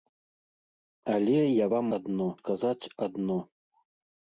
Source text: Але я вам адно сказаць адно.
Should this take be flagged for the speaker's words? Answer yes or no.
no